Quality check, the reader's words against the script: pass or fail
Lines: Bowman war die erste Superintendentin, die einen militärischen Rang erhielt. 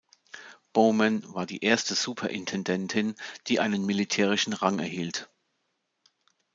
pass